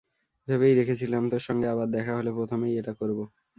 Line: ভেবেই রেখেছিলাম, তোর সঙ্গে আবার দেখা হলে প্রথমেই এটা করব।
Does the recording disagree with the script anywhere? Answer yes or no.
no